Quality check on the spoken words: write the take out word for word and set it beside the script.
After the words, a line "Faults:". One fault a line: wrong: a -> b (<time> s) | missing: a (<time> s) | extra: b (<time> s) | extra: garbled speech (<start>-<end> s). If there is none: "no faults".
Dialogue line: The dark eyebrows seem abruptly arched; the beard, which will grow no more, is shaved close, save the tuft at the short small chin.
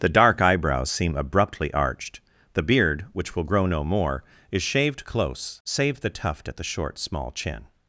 The dark eyebrows seem abruptly arched; the beard, which will grow no more, is shaved close, save the tuft at the short small chin.
Faults:
no faults